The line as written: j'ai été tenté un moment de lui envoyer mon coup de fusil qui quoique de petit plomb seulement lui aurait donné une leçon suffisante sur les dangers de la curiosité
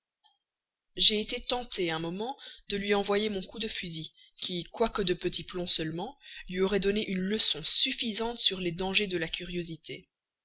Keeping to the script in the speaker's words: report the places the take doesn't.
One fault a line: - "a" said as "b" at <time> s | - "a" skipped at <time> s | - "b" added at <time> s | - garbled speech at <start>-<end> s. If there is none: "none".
none